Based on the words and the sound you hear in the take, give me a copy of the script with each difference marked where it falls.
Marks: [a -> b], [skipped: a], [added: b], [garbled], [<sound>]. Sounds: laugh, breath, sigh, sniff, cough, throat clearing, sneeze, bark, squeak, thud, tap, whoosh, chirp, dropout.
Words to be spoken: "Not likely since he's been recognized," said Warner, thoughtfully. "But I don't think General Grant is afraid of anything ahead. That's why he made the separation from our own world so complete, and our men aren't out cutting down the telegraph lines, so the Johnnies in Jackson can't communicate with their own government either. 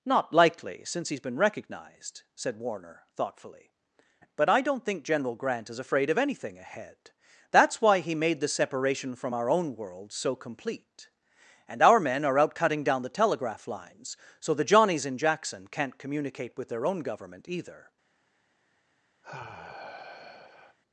"Not likely since he's been recognized," said Warner, thoughtfully. "But I don't think General Grant is afraid of anything ahead. That's why he made the separation from our own world so complete, and our men [aren't -> are] out cutting down the telegraph lines, so the Johnnies in Jackson can't communicate with their own government either. [sigh]